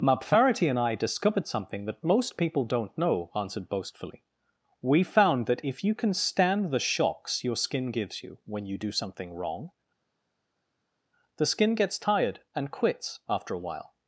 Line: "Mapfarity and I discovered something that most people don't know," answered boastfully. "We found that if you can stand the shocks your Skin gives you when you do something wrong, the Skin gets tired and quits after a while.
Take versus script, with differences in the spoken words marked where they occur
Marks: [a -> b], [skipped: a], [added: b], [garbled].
"Mapfarity and I discovered something that most people don't know," answered boastfully. "We found that if you can stand the shocks your Skin gives you when you do something wrong, the Skin gets tired and quits after a while.